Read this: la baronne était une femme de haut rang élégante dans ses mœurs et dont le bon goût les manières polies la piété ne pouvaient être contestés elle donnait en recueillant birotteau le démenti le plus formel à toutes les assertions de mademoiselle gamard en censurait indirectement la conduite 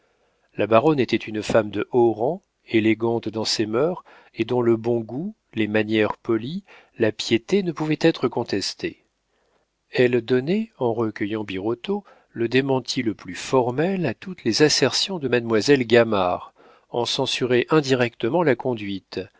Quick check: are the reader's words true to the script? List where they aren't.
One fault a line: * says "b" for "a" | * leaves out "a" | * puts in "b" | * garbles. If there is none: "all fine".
all fine